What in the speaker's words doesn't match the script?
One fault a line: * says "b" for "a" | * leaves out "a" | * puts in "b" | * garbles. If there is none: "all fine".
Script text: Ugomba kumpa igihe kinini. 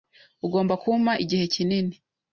all fine